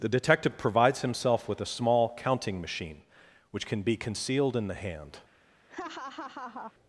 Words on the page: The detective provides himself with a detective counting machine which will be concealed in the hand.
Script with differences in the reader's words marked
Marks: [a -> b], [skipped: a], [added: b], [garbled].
The detective provides himself with a [detective -> small] counting machine which [will -> can] be concealed in the hand.